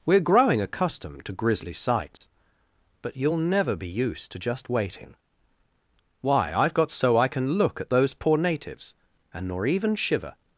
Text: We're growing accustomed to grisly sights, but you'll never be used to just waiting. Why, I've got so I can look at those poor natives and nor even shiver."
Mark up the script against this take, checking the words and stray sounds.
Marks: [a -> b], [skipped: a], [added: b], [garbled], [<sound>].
We're growing accustomed to grisly sights, [dropout] but you'll never be used to just waiting. Why, I've got so I can look at those poor natives and nor even shiver."